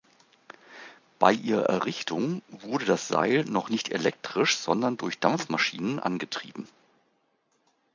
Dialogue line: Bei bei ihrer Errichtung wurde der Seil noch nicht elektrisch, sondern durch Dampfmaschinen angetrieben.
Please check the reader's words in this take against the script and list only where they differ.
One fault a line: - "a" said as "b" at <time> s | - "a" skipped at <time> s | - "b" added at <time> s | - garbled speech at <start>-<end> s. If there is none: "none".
- "bei" skipped at 1.3 s
- "der" said as "das" at 2.9 s